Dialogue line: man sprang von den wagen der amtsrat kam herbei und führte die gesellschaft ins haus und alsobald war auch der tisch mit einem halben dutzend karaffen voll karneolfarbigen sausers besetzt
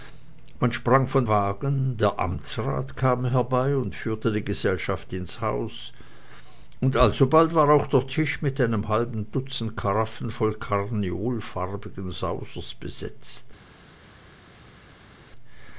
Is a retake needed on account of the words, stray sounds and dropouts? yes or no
yes